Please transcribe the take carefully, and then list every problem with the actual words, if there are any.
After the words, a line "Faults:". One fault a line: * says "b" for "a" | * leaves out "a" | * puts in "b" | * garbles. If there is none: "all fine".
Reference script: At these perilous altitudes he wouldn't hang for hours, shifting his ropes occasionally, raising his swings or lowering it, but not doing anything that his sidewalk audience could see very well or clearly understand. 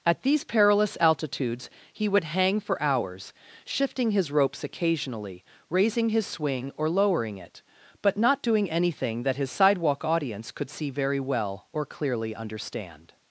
At these perilous altitudes he would hang for hours, shifting his ropes occasionally, raising his swing or lowering it, but not doing anything that his sidewalk audience could see very well or clearly understand.
Faults:
* says "would" for "wouldn't"
* says "swing" for "swings"